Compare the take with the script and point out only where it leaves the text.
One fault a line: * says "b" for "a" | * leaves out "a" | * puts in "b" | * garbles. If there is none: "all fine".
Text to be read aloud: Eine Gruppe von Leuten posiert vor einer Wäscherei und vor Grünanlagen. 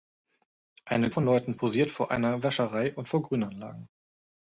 * leaves out "Gruppe"